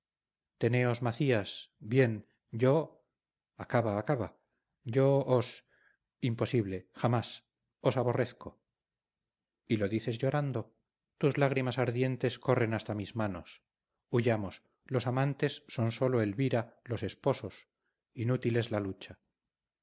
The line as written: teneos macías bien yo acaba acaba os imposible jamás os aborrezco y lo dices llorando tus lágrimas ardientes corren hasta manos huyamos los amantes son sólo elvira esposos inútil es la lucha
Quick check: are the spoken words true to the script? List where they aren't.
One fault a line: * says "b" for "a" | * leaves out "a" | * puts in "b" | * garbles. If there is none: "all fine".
* puts in "yo"
* puts in "mis"
* puts in "los"